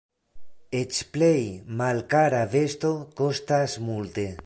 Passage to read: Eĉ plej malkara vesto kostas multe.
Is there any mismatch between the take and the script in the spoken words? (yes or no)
no